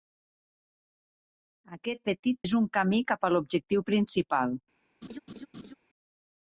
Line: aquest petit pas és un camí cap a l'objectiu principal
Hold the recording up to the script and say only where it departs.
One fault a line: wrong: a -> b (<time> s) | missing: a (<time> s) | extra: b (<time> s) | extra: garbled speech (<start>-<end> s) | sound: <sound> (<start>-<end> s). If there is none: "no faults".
missing: pas (2.4 s)
sound: laugh (5.0-5.7 s)